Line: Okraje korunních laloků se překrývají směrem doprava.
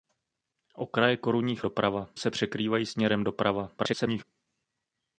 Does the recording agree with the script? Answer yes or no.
no